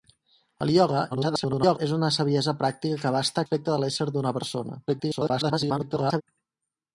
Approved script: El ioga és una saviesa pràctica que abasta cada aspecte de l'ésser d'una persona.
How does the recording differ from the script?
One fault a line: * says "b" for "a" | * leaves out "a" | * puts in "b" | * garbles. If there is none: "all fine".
* garbles
* leaves out "cada"
* garbles